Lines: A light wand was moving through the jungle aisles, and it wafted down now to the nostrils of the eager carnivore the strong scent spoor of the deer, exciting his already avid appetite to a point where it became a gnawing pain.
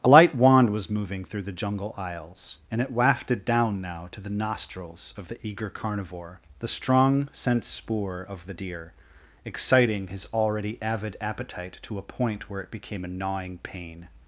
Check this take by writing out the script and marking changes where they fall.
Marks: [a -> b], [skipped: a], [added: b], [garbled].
A light wand was moving through the jungle aisles, and it wafted down now to the nostrils of the eager carnivore the strong scent spoor of the deer, exciting his already avid appetite to a point where it became a gnawing pain.